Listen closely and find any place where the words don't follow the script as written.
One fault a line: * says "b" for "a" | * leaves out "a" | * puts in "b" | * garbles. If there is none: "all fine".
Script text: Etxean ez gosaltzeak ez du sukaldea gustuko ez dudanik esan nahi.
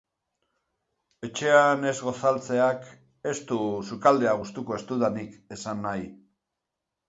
all fine